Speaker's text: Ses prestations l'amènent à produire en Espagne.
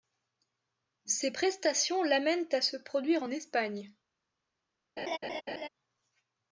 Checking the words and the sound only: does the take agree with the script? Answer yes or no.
no